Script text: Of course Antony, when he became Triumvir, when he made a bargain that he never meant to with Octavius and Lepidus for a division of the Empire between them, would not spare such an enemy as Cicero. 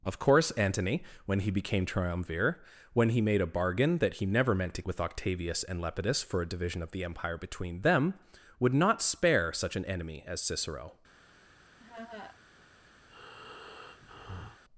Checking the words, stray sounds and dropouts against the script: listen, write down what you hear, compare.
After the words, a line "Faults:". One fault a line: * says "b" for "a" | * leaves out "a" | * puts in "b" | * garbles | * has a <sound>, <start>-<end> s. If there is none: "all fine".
Of course Antony, when he became Triumvir, when he made a bargain that he never meant to with Octavius and Lepidus for a division of the Empire between them, would not spare such an enemy as Cicero.
Faults:
* has a laugh, 11.8-12.4 s
* has a breath, 13.1-14.6 s